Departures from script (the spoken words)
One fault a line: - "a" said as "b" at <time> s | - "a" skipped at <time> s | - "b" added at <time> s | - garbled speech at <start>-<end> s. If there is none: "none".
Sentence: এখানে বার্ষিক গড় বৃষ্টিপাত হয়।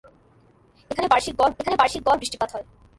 - "এখানে বার্ষিক গড়" added at 1.6 s